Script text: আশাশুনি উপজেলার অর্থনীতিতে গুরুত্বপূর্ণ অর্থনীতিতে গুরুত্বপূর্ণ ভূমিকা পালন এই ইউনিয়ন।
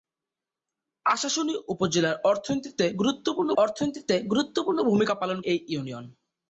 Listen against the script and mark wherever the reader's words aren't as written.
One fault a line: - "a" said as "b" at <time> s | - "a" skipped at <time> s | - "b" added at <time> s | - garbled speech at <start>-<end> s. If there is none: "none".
none